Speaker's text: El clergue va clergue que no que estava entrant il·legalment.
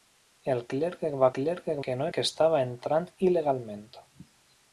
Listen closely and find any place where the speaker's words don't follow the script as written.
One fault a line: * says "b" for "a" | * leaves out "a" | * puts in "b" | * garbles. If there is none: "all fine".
all fine